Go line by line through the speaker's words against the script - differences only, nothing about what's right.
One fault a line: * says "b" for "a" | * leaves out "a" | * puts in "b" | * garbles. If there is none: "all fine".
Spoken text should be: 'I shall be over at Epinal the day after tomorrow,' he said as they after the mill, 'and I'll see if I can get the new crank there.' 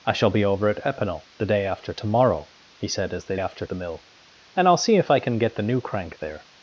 all fine